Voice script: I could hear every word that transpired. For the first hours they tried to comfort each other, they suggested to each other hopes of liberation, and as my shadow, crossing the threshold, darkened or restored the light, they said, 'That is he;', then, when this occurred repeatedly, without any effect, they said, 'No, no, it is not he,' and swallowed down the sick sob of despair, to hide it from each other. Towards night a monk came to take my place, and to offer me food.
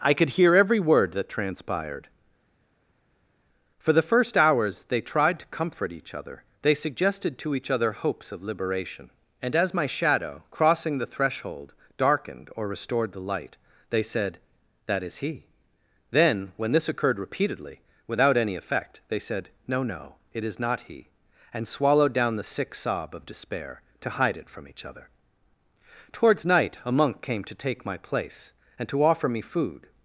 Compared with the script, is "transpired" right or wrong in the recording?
right